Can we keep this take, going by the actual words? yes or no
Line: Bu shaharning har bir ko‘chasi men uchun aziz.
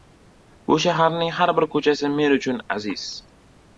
yes